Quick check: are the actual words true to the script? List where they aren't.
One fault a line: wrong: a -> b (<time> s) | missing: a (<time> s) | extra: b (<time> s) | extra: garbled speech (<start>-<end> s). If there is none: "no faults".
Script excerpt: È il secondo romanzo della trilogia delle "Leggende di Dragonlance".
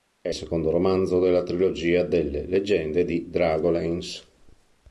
missing: il (0.3 s)